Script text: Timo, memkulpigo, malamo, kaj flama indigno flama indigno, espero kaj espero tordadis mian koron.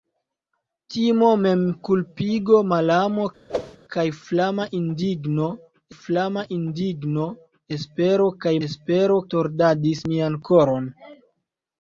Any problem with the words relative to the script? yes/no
no